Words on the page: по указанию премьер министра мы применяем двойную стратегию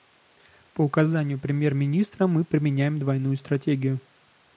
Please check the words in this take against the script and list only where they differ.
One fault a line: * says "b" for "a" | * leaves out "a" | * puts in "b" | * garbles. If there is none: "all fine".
all fine